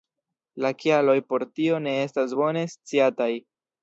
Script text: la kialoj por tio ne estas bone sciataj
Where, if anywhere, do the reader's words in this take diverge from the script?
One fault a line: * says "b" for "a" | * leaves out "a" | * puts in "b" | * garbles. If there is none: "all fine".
all fine